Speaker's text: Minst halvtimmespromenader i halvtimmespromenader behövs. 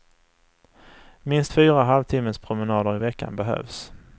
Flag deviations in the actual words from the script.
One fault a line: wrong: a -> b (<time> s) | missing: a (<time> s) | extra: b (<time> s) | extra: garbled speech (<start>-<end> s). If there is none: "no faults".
extra: fyra (1.5 s)
wrong: halvtimmespromenader -> veckan (3.0 s)